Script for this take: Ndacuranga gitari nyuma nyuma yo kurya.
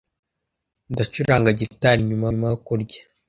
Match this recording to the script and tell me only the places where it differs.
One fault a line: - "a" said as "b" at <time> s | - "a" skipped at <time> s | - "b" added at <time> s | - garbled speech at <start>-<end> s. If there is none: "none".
none